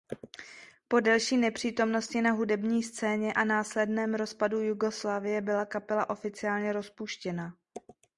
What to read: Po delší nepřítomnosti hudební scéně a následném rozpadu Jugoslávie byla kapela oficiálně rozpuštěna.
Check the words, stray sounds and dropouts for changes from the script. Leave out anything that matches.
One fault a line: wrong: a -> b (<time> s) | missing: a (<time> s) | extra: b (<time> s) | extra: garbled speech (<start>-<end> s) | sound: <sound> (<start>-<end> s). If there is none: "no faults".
extra: na (2.2 s)